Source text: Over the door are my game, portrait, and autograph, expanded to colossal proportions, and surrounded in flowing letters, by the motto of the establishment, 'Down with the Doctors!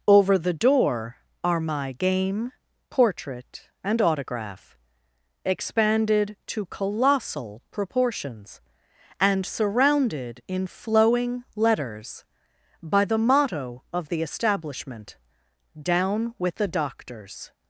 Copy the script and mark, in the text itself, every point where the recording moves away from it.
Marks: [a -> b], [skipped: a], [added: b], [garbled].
Over the door are my game, portrait, and autograph, expanded to colossal proportions, and surrounded in flowing letters, by the motto of the establishment, 'Down with the Doctors!